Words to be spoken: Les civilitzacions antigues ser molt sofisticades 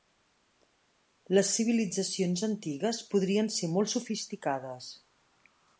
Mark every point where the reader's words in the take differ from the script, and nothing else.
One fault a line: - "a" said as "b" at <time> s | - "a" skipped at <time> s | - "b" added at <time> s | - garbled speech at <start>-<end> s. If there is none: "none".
- "podrien" added at 3.1 s